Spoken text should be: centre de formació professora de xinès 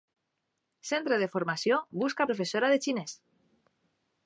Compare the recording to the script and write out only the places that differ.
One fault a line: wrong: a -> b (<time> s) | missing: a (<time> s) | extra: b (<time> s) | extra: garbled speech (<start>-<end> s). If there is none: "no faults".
extra: busca (2.0 s)